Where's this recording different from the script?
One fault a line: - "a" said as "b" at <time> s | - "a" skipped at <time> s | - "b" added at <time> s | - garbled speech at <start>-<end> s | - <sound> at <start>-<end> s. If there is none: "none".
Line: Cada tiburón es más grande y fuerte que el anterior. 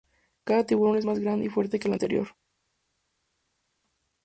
none